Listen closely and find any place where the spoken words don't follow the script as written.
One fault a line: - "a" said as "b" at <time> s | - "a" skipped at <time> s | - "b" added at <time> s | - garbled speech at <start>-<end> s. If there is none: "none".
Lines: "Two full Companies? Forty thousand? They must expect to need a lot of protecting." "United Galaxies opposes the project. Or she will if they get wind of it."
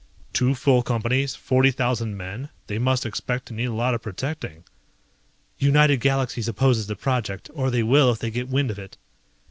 - "men" added at 2.2 s
- "she" said as "they" at 7.7 s